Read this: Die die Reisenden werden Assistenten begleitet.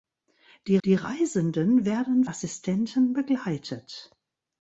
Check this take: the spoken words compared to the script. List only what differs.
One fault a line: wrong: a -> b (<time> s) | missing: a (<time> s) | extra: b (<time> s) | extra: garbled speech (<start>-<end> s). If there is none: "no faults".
no faults